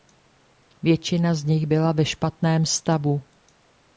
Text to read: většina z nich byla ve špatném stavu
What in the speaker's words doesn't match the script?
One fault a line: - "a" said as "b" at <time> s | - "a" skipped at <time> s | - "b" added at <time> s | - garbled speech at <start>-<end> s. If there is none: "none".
none